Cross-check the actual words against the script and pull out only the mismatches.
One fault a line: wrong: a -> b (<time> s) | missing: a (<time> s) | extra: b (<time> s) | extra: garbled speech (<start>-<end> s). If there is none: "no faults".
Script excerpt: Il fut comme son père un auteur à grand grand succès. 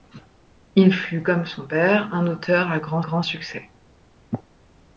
no faults